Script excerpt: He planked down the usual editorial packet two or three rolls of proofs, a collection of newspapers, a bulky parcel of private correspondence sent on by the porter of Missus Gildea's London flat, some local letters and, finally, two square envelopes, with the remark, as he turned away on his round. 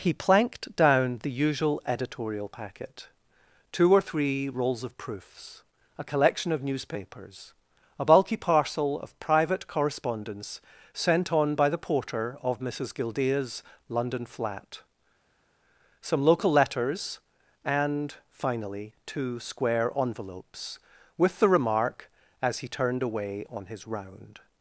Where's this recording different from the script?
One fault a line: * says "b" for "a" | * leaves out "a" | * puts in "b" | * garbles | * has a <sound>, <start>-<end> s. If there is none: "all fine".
all fine